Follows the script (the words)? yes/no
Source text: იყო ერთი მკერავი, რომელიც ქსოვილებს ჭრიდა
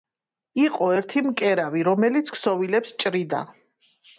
yes